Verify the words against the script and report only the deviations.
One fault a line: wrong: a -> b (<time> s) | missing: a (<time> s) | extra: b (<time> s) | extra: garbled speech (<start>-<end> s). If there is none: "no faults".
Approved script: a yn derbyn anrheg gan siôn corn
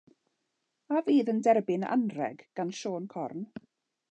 extra: fydd (1.1 s)